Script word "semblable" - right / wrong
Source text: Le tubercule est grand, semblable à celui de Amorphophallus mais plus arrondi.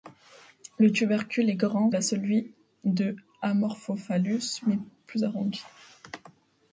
wrong